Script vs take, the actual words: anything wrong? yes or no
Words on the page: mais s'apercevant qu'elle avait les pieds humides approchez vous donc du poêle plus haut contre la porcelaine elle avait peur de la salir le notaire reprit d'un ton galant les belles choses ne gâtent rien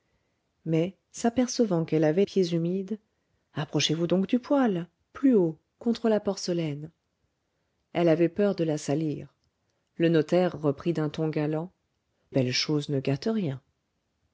yes